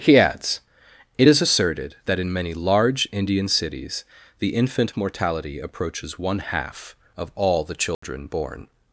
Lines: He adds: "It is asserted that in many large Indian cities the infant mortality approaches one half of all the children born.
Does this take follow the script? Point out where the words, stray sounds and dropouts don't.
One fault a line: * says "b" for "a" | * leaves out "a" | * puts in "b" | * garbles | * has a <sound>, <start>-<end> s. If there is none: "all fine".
* has a dropout, 7.9-8.0 s